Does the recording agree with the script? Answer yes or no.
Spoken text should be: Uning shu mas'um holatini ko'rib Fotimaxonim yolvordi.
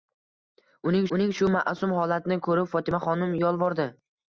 no